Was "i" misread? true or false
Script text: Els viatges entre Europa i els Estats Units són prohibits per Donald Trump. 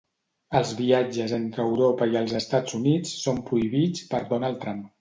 false